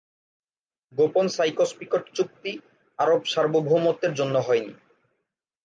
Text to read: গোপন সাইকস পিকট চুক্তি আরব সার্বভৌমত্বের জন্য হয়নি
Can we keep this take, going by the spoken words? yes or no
yes